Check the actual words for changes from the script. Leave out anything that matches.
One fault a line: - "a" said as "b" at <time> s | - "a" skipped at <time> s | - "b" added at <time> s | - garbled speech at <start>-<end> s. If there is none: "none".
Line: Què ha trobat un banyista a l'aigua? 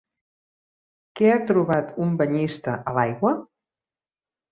none